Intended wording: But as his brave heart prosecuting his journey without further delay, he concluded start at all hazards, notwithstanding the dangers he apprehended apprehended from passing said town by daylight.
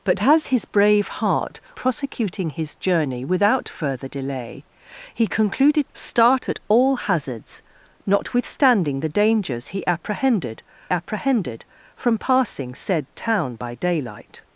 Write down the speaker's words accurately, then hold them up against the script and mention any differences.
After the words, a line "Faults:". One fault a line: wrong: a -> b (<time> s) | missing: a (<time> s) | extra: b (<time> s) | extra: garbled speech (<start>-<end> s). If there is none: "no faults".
But as his brave heart prosecuting his journey without further delay, he concluded start at all hazards, notwithstanding the dangers he apprehended apprehended from passing said town by daylight.
Faults:
no faults